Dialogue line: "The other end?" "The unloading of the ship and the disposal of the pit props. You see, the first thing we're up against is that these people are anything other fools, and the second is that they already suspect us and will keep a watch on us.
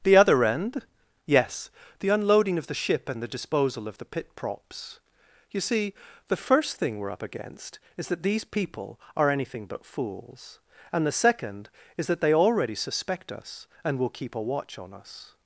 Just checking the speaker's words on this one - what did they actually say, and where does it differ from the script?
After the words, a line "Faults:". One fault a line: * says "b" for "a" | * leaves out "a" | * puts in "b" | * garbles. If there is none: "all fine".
"The other end?" "Yes, the unloading of the ship and the disposal of the pit props. You see, the first thing we're up against is that these people are anything but fools, and the second is that they already suspect us and will keep a watch on us.
Faults:
* puts in "Yes"
* says "but" for "other"